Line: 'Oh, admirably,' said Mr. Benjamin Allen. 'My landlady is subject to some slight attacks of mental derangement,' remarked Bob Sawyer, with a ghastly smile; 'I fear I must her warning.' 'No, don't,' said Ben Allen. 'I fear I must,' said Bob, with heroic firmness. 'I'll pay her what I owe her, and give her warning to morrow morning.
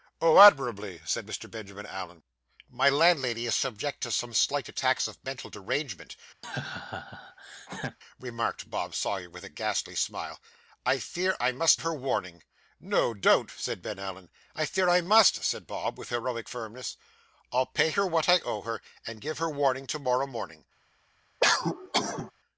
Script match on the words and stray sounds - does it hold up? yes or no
no